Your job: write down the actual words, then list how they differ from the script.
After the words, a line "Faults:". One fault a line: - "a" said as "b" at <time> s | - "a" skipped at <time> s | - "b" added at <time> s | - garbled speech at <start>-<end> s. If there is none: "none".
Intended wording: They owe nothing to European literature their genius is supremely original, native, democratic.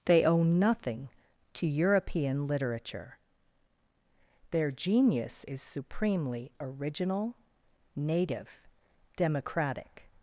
They owe nothing to European literature their genius is supremely original, native, democratic.
Faults:
none